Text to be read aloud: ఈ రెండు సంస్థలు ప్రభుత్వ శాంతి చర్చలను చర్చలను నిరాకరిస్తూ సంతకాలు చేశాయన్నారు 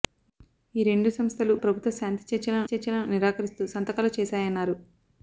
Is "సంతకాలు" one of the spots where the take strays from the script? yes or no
no